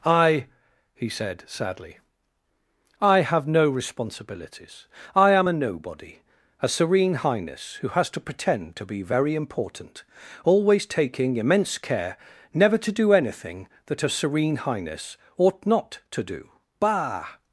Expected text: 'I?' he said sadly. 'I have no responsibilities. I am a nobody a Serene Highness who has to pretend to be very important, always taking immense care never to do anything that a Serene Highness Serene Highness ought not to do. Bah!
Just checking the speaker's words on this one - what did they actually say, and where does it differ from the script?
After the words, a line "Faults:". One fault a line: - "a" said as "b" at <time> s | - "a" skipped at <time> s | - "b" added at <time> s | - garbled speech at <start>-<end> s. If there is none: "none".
'I?' he said sadly. 'I have no responsibilities. I am a nobody a Serene Highness who has to pretend to be very important, always taking immense care never to do anything that a Serene Highness ought not to do. Bah!
Faults:
- "Serene Highness" skipped at 15.1 s